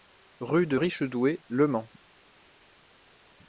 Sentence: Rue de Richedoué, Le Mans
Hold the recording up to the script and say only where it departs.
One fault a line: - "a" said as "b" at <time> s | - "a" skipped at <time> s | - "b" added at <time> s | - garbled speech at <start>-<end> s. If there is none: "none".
none